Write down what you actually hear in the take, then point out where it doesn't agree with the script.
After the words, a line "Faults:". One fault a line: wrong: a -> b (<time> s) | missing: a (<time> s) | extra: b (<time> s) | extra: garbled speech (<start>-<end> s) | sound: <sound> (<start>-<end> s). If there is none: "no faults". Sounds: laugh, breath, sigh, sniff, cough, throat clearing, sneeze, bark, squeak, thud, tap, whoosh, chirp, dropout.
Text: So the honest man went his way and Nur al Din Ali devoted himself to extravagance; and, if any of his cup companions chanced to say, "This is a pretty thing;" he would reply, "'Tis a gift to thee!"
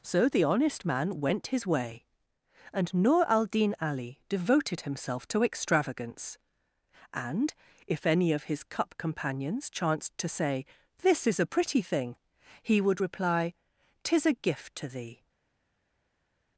So the honest man went his way and Nur al Din Ali devoted himself to extravagance; and, if any of his cup companions chanced to say, "This is a pretty thing;" he would reply, "'Tis a gift to thee!"
Faults:
no faults